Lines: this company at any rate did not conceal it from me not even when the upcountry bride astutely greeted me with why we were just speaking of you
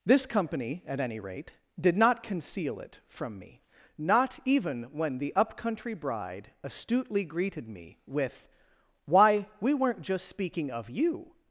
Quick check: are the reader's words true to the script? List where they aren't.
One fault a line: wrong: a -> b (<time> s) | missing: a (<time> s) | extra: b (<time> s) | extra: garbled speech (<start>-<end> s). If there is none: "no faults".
wrong: were -> weren't (9.7 s)